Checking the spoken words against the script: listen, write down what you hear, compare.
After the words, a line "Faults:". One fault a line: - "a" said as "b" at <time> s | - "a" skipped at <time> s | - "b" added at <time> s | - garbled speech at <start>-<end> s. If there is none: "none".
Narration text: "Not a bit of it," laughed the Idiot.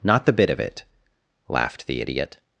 "Not the bit of it," laughed the Idiot.
Faults:
- "a" said as "the" at 0.2 s